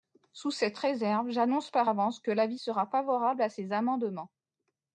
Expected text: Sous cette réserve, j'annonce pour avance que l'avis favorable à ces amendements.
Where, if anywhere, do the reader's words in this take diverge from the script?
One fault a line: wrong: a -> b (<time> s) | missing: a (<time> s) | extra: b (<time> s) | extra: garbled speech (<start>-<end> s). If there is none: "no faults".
wrong: pour -> par (1.7 s)
extra: sera (2.6 s)